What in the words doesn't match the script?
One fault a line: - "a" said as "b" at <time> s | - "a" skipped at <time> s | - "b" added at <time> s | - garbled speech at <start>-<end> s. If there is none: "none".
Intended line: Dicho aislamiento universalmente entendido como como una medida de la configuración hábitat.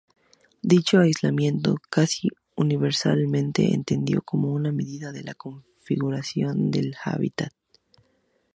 - "es casi" added at 1.8 s
- "como" skipped at 4.5 s
- "del" added at 6.7 s